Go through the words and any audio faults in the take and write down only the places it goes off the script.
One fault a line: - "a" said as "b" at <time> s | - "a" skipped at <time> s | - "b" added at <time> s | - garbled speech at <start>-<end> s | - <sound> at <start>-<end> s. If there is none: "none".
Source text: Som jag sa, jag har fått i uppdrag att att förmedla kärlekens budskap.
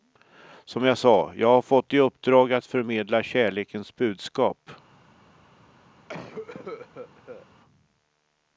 - "att" skipped at 2.6 s
- cough at 6.1-7.5 s